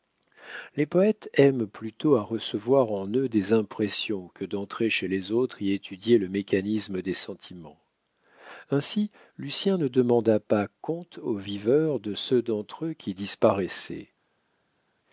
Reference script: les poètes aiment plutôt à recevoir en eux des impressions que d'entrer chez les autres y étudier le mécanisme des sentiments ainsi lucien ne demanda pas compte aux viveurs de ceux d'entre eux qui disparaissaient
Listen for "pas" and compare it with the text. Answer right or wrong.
right